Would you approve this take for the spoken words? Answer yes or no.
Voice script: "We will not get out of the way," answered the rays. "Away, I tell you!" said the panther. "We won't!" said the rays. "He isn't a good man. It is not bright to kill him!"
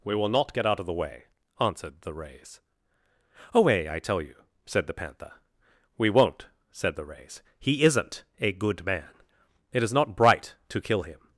yes